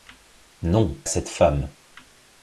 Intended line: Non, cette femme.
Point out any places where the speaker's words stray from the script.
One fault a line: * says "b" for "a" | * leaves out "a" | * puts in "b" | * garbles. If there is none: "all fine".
all fine